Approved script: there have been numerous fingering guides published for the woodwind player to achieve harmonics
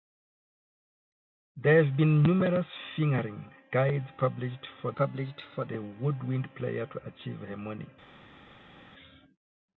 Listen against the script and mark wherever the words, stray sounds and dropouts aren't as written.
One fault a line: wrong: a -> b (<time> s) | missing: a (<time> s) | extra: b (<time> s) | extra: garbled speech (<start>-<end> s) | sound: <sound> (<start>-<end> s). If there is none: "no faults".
extra: published for (5.0 s)